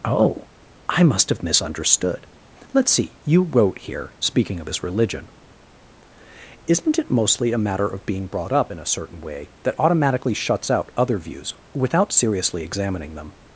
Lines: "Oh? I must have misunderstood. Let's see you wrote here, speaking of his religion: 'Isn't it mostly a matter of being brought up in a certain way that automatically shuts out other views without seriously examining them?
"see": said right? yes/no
yes